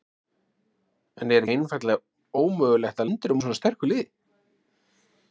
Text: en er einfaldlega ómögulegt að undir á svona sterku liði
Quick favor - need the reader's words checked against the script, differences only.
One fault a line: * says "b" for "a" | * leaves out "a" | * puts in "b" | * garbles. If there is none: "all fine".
all fine